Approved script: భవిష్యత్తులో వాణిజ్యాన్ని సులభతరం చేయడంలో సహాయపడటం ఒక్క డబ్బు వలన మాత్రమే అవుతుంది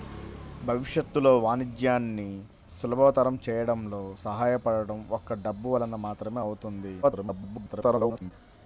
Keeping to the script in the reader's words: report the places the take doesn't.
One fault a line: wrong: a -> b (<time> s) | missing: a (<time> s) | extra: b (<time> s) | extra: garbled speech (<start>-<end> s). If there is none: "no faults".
extra: garbled speech (7.0-8.3 s)